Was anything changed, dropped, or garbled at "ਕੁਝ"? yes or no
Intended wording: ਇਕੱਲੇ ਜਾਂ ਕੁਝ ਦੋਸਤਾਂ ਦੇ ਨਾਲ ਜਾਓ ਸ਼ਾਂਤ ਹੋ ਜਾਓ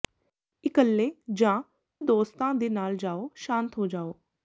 yes